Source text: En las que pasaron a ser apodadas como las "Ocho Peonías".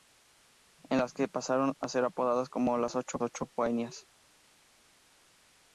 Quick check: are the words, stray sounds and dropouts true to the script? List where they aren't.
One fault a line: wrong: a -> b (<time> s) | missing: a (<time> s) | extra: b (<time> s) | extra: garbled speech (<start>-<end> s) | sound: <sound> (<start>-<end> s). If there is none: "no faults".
extra: ocho (3.2 s)